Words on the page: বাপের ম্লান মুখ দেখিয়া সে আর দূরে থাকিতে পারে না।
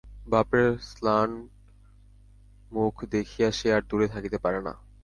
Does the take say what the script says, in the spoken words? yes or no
yes